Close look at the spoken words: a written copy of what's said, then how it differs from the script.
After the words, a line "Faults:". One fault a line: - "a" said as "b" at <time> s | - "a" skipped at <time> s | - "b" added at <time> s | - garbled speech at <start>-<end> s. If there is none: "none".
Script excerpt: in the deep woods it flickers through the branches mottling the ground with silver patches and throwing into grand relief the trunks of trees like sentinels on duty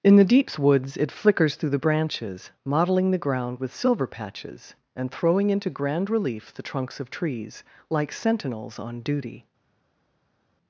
in the deeps woods it flickers through the branches mottling the ground with silver patches and throwing into grand relief the trunks of trees like sentinels on duty
Faults:
- "deep" said as "deeps" at 0.2 s